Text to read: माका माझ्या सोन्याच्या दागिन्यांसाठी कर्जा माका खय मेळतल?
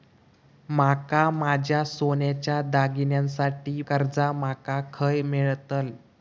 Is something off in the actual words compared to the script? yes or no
no